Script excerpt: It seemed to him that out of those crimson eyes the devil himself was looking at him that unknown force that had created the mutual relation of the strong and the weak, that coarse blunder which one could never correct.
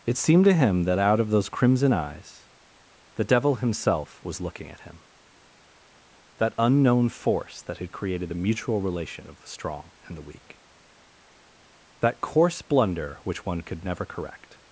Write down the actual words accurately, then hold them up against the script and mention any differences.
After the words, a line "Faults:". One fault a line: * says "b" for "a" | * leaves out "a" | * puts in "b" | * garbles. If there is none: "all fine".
It seemed to him that out of those crimson eyes the devil himself was looking at him that unknown force that had created the mutual relation of the strong and the weak, that coarse blunder which one could never correct.
Faults:
all fine